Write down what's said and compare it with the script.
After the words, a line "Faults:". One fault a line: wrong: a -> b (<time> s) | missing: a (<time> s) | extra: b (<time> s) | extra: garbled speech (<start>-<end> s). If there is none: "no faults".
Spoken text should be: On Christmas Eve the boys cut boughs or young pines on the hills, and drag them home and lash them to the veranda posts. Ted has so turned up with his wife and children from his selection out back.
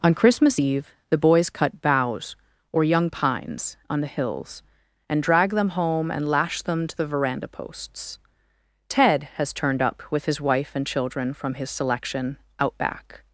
On Christmas Eve the boys cut boughs or young pines on the hills, and drag them home and lash them to the veranda posts. Ted has turned up with his wife and children from his selection out back.
Faults:
missing: so (9.5 s)